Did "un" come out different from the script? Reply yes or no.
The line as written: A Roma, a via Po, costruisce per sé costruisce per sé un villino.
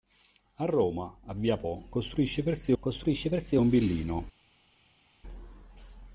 no